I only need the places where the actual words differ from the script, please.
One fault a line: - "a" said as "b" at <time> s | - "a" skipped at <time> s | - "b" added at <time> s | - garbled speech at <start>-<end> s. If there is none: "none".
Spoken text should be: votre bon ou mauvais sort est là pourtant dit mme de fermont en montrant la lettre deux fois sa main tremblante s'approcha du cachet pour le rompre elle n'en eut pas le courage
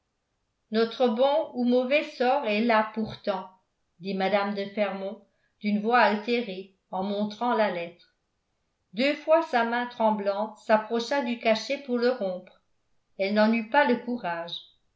- "votre" said as "notre" at 0.7 s
- "d'une voix altérée" added at 5.6 s